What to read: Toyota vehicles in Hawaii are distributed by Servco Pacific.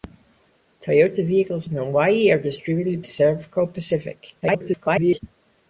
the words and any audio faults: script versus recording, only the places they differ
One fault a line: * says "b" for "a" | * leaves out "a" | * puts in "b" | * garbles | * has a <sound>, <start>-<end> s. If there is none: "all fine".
* leaves out "by"
* garbles